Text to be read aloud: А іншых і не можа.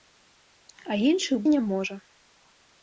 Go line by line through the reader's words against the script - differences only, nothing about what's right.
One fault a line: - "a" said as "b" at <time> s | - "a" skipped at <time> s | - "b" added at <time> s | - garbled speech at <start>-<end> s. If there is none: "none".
none